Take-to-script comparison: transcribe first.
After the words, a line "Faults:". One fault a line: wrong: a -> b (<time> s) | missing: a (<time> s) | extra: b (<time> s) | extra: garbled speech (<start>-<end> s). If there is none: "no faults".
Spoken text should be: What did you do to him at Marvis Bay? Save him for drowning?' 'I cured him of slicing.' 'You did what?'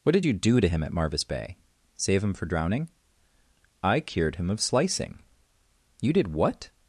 What did you do to him at Marvis Bay? Save him for drowning?' 'I cured him of slicing.' 'You did what?'
Faults:
no faults